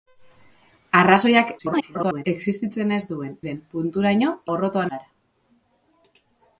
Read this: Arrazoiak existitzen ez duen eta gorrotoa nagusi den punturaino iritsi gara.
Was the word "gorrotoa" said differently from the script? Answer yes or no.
yes